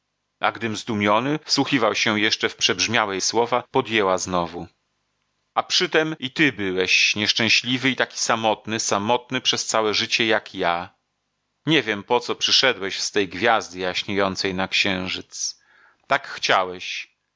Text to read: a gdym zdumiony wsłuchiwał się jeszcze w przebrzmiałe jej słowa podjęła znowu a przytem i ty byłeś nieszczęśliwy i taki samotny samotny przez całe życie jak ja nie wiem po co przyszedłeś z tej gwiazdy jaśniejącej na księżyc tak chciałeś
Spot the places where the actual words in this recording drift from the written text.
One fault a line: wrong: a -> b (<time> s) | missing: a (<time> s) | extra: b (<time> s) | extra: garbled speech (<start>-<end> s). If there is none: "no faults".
missing: jej (3.2 s)